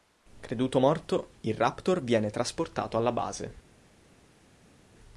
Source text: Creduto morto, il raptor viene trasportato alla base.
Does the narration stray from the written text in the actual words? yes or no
no